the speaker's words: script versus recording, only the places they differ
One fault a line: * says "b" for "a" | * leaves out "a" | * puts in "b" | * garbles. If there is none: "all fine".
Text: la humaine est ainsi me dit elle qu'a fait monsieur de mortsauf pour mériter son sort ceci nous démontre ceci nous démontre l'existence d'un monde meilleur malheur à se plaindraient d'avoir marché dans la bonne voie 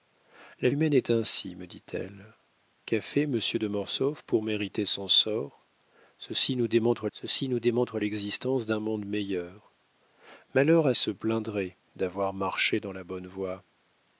all fine